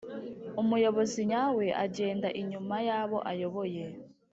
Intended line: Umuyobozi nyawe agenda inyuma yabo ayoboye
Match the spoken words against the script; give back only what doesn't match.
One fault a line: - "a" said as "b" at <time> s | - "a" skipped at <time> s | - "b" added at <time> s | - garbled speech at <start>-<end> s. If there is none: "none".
none